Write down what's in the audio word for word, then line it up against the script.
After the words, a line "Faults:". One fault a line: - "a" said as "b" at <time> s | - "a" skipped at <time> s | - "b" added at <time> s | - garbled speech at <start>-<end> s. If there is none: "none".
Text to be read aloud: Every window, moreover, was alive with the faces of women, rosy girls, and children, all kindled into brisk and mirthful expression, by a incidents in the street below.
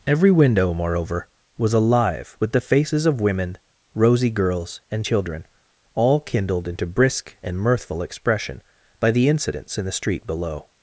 Every window, moreover, was alive with the faces of women, rosy girls, and children, all kindled into brisk and mirthful expression, by the incidents in the street below.
Faults:
- "a" said as "the" at 9.1 s